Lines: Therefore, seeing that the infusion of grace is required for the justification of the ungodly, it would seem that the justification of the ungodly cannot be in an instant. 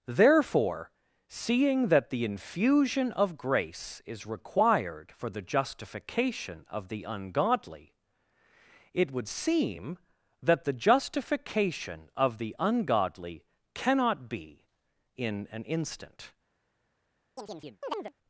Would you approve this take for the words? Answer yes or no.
yes